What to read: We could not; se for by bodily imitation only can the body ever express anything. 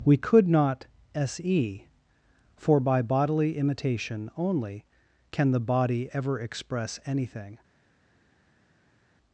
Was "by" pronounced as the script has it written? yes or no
yes